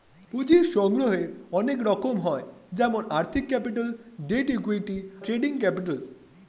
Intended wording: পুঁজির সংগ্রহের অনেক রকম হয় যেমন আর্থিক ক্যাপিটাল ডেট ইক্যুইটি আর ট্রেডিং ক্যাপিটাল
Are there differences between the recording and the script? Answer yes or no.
yes